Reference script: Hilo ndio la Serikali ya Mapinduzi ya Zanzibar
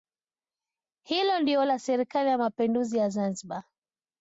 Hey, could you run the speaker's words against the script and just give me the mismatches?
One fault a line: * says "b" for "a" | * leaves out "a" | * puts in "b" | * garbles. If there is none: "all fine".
all fine